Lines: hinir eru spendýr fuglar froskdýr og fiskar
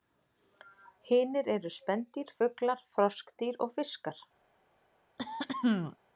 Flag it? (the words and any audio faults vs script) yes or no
yes